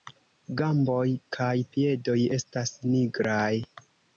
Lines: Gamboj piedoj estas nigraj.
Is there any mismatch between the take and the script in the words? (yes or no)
yes